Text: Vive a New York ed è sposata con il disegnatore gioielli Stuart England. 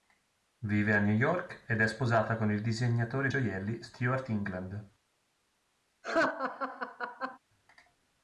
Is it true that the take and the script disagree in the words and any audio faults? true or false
true